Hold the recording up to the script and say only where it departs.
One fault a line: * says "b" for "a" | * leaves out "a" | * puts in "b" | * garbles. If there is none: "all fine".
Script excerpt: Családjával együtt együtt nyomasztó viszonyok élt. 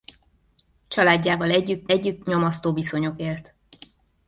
all fine